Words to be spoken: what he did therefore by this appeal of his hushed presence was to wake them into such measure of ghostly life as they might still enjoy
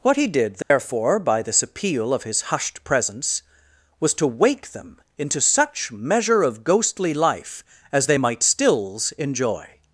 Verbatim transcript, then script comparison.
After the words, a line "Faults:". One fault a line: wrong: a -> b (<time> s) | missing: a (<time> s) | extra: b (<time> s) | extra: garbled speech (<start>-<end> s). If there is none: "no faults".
what he did therefore by this appeal of his hushed presence was to wake them into such measure of ghostly life as they might stills enjoy
Faults:
wrong: still -> stills (8.4 s)